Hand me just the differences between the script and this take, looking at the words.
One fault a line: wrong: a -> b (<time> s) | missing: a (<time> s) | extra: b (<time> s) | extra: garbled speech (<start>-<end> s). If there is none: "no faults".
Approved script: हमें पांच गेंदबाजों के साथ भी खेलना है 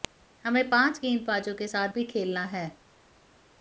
no faults